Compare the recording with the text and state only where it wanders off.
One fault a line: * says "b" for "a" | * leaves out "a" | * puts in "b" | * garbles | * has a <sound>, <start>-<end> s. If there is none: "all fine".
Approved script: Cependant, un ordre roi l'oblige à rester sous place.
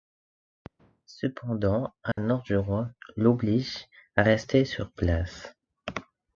* has a dropout, 2.1-2.2 s
* puts in "du"
* says "sur" for "sous"